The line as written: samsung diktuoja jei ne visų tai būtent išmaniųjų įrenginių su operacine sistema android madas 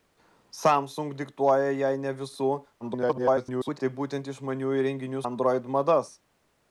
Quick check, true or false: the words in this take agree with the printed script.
false